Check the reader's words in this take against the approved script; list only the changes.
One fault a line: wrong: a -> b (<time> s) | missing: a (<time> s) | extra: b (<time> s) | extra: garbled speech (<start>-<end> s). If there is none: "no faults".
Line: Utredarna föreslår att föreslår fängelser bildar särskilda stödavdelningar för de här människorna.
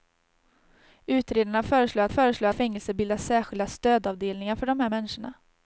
no faults